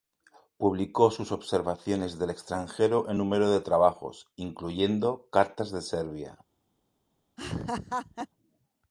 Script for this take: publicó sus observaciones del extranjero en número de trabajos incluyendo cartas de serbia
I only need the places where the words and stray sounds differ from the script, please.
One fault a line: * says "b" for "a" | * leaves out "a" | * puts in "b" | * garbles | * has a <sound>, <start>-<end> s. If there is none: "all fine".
* has a laugh, 7.4-8.3 s